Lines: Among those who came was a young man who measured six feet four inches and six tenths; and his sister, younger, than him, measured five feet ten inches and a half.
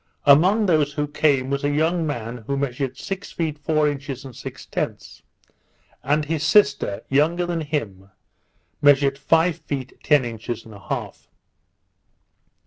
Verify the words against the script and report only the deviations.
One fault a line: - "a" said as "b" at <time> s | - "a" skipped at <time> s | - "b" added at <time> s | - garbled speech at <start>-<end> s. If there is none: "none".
none